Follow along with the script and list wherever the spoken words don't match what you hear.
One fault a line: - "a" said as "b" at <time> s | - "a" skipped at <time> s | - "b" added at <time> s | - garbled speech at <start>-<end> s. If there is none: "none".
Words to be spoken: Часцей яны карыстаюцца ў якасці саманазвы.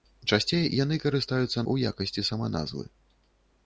none